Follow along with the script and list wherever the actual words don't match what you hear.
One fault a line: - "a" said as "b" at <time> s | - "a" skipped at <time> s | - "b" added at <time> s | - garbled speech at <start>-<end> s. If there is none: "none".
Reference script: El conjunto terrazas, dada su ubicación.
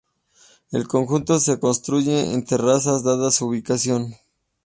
- "se construye en" added at 1.4 s